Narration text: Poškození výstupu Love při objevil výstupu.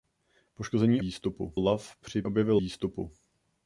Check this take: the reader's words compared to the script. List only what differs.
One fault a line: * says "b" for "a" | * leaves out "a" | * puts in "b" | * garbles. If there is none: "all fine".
all fine